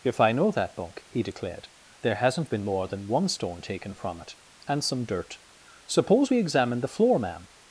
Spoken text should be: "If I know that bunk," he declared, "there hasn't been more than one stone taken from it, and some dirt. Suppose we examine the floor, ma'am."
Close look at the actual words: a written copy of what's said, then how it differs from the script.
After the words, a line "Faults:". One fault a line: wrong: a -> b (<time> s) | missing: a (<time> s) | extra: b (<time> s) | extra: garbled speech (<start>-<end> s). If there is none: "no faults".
"If I know that bunk," he declared, "there hasn't been more than one stone taken from it, and some dirt. Suppose we examine the floor, ma'am."
Faults:
no faults